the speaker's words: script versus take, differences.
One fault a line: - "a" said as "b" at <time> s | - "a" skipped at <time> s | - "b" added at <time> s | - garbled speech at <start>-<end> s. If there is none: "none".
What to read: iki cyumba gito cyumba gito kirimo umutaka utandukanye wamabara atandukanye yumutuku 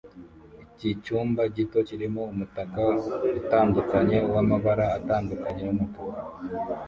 - "cyumba gito" skipped at 1.8 s